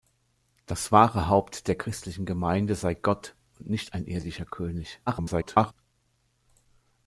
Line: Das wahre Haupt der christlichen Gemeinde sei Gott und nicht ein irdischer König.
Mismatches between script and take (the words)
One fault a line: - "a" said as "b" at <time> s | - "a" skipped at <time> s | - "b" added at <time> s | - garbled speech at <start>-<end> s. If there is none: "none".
- garbled speech at 5.1-5.7 s